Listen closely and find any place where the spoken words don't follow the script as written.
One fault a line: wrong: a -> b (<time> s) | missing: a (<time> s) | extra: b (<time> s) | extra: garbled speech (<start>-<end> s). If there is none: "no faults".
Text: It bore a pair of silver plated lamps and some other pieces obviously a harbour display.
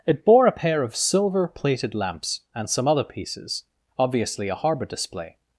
no faults